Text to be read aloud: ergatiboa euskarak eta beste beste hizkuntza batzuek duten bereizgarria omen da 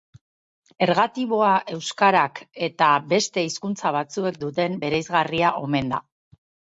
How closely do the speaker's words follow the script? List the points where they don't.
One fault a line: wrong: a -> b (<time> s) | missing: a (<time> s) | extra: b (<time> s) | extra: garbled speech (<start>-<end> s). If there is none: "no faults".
missing: beste (3.4 s)